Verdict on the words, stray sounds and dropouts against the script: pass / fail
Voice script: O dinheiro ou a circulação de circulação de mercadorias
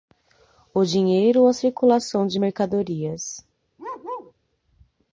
fail